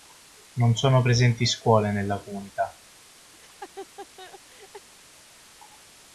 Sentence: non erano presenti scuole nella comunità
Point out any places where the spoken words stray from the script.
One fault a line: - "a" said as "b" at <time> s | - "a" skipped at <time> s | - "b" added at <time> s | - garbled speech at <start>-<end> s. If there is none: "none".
- "erano" said as "sono" at 0.8 s